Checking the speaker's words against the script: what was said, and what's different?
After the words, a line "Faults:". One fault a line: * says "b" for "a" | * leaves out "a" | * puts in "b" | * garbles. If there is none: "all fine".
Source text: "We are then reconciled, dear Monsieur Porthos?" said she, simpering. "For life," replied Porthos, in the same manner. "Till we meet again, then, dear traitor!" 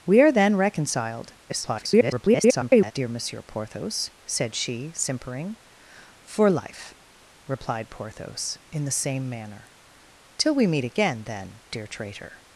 "We are then reconciled, [garbled] dear Monsieur Porthos?" said she, simpering. "For life," replied Porthos, in the same manner. "Till we meet again, then, dear traitor!"
Faults:
* garbles